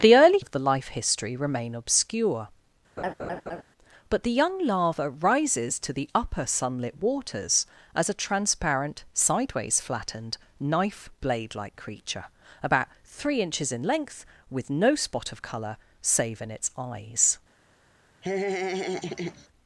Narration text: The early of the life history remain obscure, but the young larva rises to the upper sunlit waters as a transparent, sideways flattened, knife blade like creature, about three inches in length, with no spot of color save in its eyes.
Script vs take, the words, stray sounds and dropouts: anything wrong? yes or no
yes